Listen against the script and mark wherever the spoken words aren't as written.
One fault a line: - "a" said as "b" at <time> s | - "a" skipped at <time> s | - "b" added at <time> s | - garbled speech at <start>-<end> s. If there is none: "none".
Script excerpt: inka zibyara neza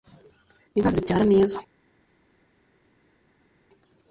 none